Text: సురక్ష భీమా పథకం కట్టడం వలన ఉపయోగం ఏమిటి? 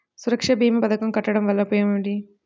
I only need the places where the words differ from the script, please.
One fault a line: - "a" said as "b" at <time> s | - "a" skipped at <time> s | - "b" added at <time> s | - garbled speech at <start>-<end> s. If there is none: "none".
none